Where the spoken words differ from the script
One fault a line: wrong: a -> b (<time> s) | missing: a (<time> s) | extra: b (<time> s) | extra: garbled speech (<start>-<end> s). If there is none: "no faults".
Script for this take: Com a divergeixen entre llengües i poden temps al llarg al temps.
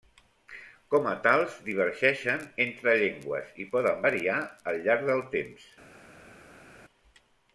extra: tals (1.3 s)
wrong: temps -> variar (4.1 s)
wrong: al -> del (5.1 s)